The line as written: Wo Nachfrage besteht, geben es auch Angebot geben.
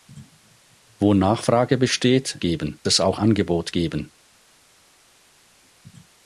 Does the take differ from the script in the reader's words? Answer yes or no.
no